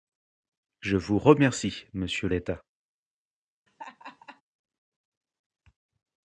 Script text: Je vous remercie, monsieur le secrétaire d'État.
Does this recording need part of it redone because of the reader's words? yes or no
yes